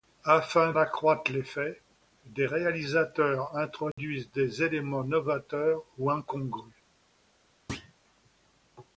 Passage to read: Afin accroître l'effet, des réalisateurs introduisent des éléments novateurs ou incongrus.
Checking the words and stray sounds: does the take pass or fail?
fail